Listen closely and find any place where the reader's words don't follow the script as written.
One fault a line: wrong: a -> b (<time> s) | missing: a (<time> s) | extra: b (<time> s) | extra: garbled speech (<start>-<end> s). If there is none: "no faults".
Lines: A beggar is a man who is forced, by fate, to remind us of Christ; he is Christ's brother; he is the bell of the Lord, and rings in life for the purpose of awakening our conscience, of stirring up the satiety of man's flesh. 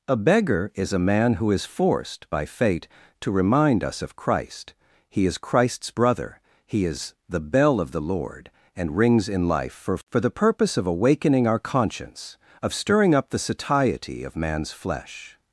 extra: for (10.1 s)